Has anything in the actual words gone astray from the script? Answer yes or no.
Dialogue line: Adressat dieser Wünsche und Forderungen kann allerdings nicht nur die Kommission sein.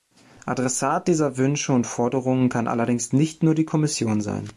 no